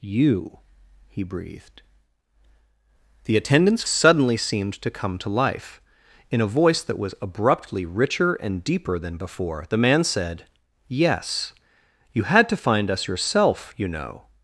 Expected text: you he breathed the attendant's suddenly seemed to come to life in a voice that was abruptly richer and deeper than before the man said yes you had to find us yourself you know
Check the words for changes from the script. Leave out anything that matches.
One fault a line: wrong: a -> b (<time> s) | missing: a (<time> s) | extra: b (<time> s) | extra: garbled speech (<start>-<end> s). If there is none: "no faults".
no faults